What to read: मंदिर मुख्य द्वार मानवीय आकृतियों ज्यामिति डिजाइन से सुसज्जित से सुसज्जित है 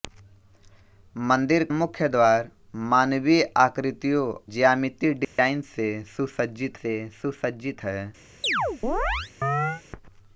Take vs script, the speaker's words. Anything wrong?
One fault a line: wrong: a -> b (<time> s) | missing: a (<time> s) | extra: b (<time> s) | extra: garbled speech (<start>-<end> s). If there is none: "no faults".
no faults